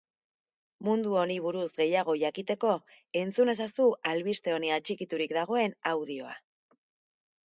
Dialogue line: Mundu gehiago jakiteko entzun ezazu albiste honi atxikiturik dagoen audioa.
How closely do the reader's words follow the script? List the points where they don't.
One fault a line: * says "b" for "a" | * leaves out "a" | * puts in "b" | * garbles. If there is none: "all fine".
* puts in "honi buruz"